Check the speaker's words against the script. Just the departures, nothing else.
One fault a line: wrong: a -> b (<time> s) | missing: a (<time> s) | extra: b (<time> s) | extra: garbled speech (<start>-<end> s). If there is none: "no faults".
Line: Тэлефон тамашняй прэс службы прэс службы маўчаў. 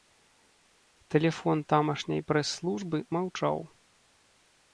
missing: прэс службы (3.0 s)